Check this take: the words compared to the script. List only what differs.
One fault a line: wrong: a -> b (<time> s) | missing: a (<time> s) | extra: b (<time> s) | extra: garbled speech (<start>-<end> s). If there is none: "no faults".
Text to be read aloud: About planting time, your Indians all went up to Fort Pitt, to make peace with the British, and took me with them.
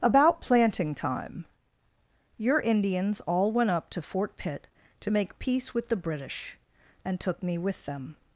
no faults